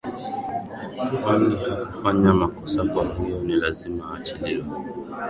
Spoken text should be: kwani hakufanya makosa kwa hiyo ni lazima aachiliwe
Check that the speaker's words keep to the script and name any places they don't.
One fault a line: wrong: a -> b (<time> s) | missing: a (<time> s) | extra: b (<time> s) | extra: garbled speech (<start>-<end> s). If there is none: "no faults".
no faults